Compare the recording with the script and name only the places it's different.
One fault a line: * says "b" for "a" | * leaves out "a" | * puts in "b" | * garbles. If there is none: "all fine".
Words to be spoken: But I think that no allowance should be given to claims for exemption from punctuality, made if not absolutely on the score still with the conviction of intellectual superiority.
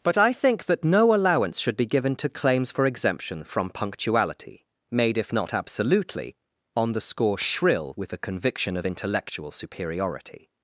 * says "shrill" for "still"